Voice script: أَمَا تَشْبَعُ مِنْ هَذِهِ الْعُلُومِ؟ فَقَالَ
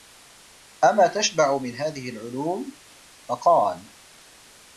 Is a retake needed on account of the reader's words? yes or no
no